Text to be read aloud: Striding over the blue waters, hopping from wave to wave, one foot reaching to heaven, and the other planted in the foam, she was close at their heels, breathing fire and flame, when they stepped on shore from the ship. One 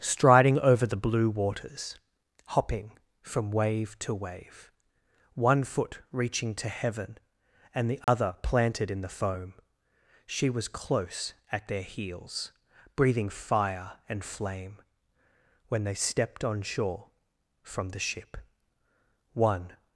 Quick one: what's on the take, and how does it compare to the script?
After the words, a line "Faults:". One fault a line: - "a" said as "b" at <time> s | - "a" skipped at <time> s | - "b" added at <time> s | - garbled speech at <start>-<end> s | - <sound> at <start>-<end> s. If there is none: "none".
Striding over the blue waters, hopping from wave to wave, one foot reaching to heaven, and the other planted in the foam, she was close at their heels, breathing fire and flame, when they stepped on shore from the ship. One
Faults:
- dropout at 8.0-8.1 s